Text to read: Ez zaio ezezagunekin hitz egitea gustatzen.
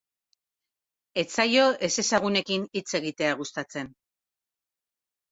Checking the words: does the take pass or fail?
pass